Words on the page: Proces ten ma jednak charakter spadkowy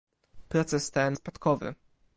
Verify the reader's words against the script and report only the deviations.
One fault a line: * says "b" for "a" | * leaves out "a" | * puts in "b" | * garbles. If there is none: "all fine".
* leaves out "ma jednak charakter"